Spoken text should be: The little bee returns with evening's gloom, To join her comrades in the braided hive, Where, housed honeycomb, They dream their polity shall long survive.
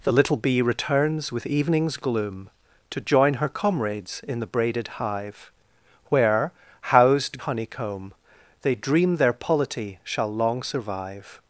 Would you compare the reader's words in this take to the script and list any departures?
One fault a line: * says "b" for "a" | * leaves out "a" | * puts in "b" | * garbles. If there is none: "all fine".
all fine